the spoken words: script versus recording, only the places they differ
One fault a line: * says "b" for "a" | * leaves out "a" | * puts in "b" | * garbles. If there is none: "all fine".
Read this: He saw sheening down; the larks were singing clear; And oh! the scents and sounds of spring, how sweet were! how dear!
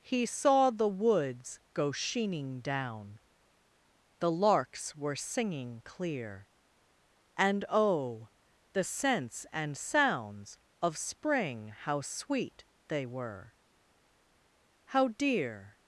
* puts in "the woods go"
* puts in "they"